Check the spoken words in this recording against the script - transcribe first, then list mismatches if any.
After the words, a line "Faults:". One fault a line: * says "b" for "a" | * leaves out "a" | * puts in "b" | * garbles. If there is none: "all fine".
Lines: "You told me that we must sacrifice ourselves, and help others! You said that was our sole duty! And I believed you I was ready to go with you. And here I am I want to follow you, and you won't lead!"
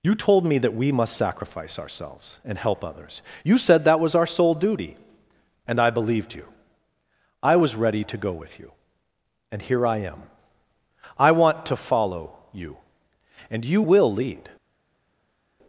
"You told me that we must sacrifice ourselves, and help others! You said that was our sole duty! And I believed you I was ready to go with you. And here I am I want to follow you, and you will lead!"
Faults:
* says "will" for "won't"